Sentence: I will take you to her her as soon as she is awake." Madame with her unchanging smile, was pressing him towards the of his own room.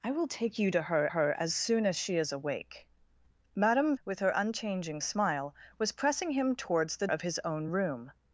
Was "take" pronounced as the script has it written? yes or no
yes